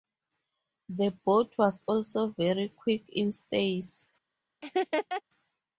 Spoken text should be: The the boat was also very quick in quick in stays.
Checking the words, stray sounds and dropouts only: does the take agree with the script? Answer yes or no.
no